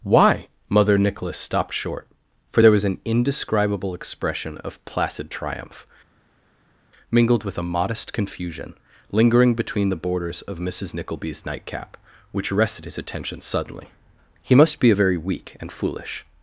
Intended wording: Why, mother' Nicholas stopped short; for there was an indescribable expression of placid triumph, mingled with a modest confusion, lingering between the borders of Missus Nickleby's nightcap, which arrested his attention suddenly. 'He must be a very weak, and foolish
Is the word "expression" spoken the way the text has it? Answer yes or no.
yes